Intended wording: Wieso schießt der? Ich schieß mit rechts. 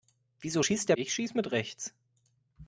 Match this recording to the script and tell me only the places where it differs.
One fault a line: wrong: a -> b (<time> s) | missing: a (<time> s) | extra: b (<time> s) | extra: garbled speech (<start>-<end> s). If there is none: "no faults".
no faults